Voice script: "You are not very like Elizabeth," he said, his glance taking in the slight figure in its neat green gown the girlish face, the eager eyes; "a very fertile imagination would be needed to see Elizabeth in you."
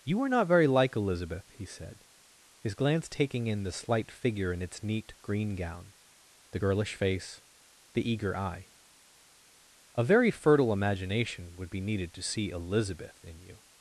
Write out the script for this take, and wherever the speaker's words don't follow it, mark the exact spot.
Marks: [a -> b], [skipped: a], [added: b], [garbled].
"You are not very like Elizabeth," he said, his glance taking in the slight figure in its neat green gown the girlish face, the eager [eyes; -> eye] "a very fertile imagination would be needed to see Elizabeth in you."